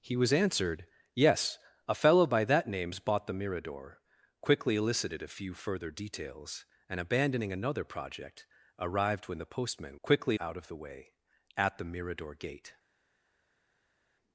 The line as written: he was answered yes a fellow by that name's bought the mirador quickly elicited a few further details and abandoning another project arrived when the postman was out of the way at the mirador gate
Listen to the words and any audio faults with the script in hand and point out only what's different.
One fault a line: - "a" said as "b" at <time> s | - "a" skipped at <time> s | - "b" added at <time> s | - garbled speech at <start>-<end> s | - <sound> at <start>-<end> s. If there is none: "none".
- "was" said as "quickly" at 10.0 s